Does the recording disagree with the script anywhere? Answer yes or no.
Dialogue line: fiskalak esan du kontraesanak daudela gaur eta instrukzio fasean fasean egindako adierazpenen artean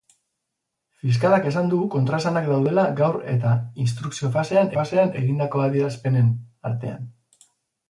no